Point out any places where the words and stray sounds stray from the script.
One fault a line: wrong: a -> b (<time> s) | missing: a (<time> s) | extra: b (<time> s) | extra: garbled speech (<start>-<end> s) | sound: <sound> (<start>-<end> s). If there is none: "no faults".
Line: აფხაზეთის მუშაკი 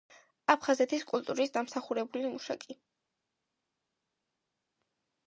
extra: კულტურის დამსახურებული (1.1 s)